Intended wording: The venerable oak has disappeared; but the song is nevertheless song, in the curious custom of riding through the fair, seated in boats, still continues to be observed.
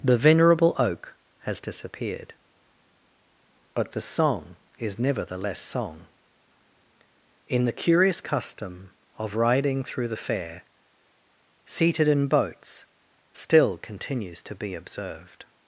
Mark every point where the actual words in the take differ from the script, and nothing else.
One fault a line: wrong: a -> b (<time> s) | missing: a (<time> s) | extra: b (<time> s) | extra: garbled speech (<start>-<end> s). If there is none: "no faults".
no faults